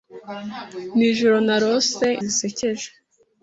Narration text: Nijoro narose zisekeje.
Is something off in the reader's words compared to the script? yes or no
no